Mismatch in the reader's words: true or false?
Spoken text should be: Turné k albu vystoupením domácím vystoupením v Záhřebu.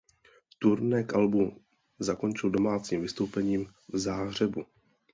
true